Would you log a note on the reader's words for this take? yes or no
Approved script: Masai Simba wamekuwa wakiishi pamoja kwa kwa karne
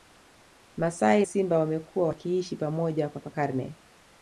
no